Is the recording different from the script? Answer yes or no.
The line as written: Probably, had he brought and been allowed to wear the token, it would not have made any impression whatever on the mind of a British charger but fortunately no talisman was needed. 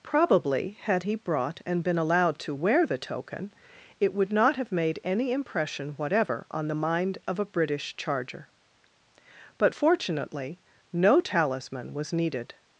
no